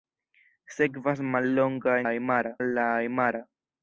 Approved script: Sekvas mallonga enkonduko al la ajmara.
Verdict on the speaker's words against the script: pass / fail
fail